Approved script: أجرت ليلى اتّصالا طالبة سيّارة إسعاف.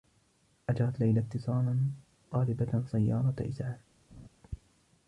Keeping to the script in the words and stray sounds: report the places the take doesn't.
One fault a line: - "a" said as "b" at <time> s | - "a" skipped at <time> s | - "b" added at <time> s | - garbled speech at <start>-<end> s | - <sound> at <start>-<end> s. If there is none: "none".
- laugh at 4.1-4.3 s